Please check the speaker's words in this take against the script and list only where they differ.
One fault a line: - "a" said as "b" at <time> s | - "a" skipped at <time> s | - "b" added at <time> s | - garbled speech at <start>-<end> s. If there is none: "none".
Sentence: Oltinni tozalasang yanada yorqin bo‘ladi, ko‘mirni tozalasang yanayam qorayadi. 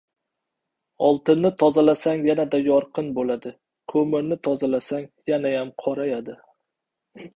none